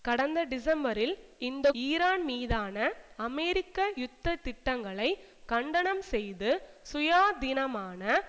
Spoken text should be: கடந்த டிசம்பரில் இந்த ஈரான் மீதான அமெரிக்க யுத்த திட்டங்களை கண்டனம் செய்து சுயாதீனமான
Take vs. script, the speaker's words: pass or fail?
pass